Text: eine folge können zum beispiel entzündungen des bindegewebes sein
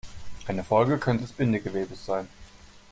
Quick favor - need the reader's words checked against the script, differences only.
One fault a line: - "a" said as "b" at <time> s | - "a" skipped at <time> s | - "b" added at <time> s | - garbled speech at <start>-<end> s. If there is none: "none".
- "zum beispiel entzündungen" skipped at 1.2 s